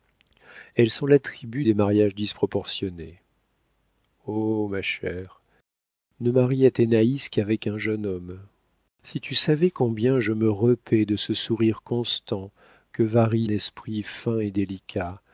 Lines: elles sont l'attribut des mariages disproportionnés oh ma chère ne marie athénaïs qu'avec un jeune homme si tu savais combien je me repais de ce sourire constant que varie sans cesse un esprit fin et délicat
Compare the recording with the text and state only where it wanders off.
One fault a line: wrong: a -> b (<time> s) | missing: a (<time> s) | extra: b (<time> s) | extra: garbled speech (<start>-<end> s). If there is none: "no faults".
missing: sans cesse un (13.5 s)